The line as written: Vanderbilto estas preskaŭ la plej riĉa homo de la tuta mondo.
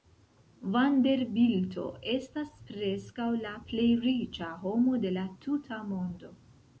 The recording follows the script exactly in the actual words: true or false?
true